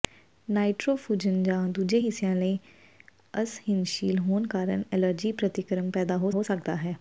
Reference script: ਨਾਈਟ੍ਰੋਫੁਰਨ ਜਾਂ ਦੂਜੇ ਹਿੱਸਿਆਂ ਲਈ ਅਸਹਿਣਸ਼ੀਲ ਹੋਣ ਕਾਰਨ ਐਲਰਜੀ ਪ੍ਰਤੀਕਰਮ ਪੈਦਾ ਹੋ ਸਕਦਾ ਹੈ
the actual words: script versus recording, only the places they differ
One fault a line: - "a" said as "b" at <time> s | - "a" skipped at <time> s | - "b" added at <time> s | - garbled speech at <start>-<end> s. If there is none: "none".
- "ਹੋ" added at 6.3 s